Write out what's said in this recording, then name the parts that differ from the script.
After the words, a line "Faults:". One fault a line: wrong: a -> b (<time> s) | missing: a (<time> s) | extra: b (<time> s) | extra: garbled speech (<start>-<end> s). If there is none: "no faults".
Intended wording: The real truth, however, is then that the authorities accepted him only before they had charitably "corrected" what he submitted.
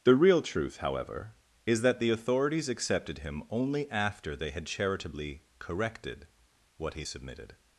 The real truth, however, is that the authorities accepted him only after they had charitably "corrected" what he submitted.
Faults:
missing: then (1.8 s)
wrong: before -> after (3.9 s)